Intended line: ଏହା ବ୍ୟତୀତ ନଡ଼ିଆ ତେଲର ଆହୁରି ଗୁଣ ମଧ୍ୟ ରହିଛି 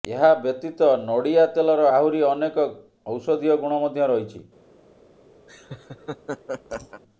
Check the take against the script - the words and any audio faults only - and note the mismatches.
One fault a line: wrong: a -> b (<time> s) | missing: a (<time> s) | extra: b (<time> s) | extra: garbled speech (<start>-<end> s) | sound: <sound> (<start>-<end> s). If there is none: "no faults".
extra: ଅନେକ ଔଷଧୀୟ (2.3 s)
sound: laugh (5.5-7.0 s)